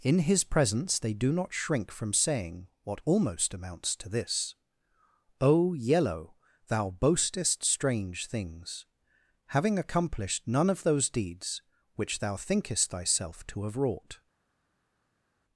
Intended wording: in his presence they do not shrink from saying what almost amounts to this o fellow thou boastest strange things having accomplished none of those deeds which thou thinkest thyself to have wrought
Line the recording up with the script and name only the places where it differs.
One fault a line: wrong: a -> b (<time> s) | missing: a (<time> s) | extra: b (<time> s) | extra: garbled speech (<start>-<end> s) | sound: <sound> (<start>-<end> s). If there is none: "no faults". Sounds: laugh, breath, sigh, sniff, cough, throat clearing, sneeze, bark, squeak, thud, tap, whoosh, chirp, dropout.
wrong: fellow -> yellow (5.7 s)